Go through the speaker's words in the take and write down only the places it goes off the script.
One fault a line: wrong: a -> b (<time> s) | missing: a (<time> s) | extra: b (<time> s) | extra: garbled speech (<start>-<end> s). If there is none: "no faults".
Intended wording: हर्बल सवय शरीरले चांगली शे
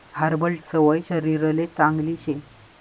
no faults